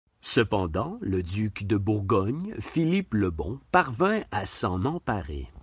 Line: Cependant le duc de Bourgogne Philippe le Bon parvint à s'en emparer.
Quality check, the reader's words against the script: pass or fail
pass